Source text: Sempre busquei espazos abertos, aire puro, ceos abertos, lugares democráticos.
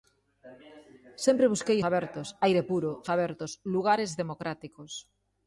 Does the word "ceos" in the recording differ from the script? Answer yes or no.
yes